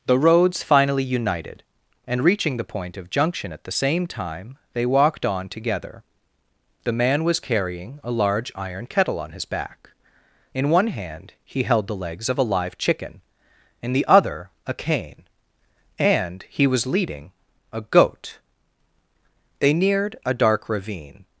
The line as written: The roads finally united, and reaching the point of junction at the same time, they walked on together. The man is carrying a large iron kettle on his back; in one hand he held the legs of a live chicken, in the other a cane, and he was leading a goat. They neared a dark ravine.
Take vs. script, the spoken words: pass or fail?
fail